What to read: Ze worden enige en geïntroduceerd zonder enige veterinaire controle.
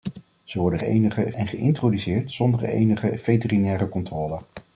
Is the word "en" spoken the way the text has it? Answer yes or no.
yes